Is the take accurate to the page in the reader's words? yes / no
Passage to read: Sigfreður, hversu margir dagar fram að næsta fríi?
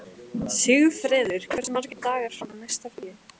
yes